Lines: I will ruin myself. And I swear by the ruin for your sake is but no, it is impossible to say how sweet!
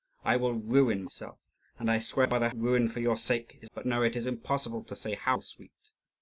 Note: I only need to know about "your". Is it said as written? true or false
true